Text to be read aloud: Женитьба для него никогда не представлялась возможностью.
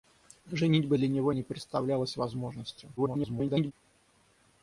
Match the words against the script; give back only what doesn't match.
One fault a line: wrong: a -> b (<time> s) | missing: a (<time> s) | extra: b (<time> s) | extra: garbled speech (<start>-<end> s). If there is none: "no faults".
missing: никогда (1.3 s)
extra: garbled speech (3.0-3.7 s)